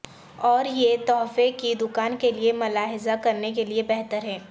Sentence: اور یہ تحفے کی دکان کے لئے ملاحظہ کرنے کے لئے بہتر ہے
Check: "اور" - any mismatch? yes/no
no